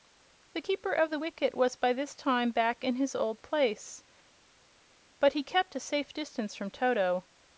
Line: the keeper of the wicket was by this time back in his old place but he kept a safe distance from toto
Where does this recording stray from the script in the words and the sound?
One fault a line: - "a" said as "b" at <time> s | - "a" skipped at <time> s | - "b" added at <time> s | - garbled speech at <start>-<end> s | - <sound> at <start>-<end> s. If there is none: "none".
none